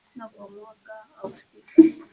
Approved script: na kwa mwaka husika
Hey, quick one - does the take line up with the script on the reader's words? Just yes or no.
yes